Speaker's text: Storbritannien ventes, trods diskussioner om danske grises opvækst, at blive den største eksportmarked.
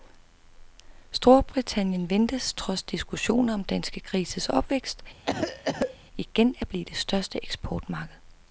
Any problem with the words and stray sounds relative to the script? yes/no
yes